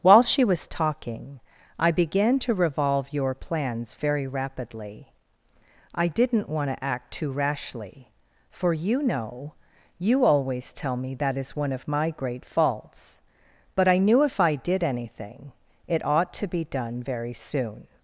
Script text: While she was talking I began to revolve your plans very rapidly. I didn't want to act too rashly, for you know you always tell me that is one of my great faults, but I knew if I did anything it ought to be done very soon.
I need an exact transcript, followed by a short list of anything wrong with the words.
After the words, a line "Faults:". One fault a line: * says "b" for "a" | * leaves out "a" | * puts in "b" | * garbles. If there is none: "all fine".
While she was talking I began to revolve your plans very rapidly. I didn't want to act too rashly, for you know you always tell me that is one of my great faults, but I knew if I did anything it ought to be done very soon.
Faults:
all fine